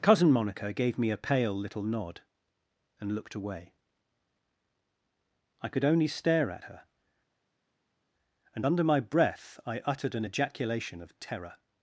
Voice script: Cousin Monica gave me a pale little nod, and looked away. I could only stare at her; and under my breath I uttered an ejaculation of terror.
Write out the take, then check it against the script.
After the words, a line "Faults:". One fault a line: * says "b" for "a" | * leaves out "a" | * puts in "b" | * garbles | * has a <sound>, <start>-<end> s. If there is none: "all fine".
Cousin Monica gave me a pale little nod, and looked away. I could only stare at her; and under my breath I uttered an ejaculation of terror.
Faults:
all fine